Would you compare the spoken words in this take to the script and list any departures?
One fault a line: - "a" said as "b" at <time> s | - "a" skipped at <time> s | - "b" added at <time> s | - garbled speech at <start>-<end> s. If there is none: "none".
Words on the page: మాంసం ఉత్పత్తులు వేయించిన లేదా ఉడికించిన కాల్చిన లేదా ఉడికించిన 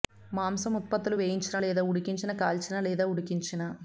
none